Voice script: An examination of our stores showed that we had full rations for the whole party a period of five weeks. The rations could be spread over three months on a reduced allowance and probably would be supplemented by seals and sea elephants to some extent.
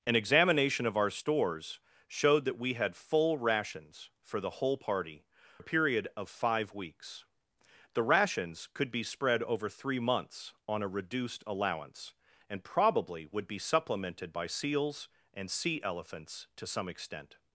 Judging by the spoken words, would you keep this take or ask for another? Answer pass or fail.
pass